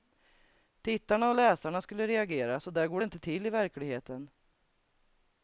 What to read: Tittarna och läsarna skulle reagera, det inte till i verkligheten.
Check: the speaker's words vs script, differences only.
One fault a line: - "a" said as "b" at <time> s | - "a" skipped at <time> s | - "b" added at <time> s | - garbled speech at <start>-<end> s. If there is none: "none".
- "så där går" added at 2.6 s